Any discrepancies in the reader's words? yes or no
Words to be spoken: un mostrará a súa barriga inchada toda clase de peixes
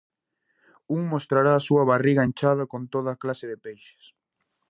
yes